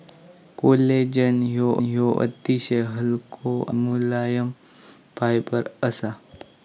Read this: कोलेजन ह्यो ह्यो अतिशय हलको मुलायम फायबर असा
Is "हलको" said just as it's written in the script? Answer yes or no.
yes